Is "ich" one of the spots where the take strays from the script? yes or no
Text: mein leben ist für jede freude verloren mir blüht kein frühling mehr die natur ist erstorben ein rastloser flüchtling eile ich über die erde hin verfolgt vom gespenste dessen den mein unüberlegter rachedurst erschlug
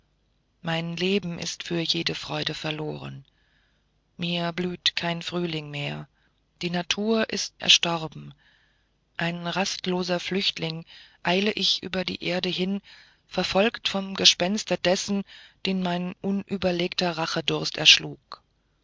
no